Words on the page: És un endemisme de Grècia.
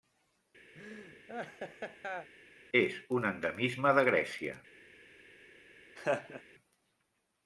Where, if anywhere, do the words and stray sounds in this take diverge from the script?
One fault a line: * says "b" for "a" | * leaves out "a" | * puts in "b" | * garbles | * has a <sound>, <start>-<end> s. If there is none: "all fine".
* has a laugh, 0.7-2.3 s
* has a laugh, 6.0-6.4 s